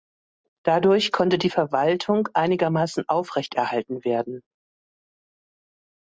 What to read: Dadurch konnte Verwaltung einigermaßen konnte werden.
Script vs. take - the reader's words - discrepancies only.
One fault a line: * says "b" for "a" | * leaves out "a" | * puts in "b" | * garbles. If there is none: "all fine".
* puts in "die"
* says "aufrechterhalten" for "konnte"